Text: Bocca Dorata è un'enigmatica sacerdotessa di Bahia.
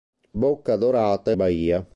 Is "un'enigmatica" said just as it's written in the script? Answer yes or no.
no